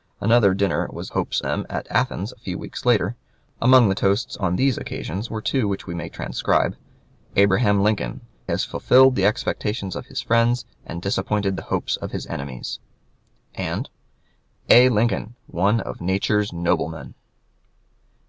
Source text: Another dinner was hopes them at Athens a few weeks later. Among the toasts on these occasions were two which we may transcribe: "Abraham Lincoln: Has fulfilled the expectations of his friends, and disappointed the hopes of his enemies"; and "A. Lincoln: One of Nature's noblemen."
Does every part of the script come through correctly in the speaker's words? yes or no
yes